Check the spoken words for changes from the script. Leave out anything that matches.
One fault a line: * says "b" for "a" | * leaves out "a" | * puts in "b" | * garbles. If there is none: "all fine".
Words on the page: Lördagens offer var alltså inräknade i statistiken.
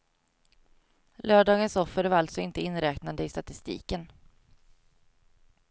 * puts in "inte"